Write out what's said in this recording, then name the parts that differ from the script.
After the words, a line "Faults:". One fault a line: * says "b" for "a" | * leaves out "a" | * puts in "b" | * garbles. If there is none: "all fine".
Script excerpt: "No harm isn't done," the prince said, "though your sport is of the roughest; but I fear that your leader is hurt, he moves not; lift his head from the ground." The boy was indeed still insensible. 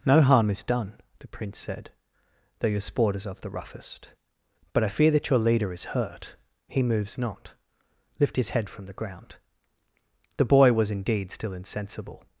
"No harm is done," the prince said, "though your sport is of the roughest; but I fear that your leader is hurt, he moves not; lift his head from the ground." The boy was indeed still insensible.
Faults:
* says "is" for "isn't"